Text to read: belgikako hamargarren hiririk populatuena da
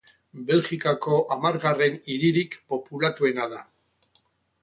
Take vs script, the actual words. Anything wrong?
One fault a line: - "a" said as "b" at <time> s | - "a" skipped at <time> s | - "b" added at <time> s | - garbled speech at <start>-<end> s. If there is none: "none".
none